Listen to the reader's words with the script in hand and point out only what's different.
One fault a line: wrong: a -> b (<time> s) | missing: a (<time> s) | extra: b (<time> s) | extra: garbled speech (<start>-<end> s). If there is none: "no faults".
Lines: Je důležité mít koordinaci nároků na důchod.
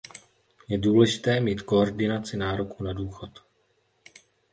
no faults